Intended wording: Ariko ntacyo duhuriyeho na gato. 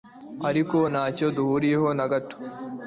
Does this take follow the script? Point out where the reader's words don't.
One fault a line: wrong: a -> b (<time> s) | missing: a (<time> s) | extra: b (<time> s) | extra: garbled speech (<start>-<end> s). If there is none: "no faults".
no faults